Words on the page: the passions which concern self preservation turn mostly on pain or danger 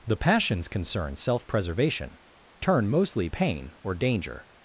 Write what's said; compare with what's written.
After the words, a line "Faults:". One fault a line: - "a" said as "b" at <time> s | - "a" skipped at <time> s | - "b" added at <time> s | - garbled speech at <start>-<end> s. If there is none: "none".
the passions concern self preservation turn mostly pain or danger
Faults:
- "which" skipped at 0.7 s
- "on" skipped at 3.3 s